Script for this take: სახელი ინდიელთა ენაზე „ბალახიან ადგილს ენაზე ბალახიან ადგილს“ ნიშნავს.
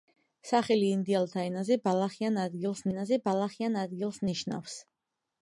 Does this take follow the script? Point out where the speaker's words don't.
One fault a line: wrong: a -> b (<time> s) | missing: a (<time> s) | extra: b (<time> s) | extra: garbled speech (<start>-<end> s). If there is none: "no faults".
no faults